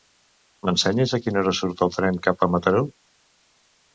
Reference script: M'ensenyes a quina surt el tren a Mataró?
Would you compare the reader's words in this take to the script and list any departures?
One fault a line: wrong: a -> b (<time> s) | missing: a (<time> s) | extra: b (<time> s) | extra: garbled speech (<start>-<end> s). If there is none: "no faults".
extra: hora (1.4 s)
extra: cap (2.3 s)